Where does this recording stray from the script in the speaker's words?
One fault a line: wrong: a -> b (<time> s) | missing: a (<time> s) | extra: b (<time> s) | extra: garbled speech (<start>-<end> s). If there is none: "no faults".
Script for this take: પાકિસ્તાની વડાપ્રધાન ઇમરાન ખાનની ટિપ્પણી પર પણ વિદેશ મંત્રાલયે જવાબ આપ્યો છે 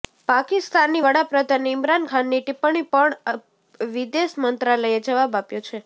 missing: પર (2.8 s)